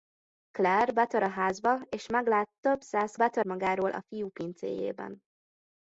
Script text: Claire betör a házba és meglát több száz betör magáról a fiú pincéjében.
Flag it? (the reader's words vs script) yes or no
no